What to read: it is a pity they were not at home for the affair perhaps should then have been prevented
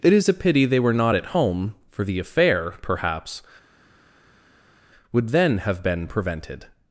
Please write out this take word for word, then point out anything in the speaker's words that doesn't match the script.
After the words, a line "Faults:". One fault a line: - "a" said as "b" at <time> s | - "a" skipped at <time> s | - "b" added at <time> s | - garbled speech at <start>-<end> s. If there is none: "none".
it is a pity they were not at home for the affair perhaps would then have been prevented
Faults:
- "should" said as "would" at 5.1 s